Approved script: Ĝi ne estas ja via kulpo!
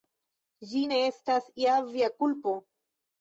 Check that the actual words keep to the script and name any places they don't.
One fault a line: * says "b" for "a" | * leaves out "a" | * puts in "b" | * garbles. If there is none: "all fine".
all fine